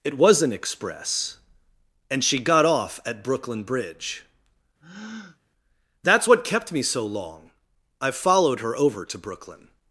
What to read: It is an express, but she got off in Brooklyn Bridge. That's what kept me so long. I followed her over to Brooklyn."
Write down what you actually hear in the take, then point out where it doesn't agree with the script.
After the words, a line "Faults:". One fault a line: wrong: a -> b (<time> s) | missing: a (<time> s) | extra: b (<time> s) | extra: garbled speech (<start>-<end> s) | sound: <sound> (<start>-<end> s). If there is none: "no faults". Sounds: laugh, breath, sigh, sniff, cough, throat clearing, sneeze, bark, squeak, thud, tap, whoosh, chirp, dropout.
It was an express, and she got off at Brooklyn Bridge. That's what kept me so long. I followed her over to Brooklyn."
Faults:
wrong: is -> was (0.2 s)
wrong: but -> and (2.1 s)
wrong: in -> at (3.0 s)
sound: breath (4.8-5.4 s)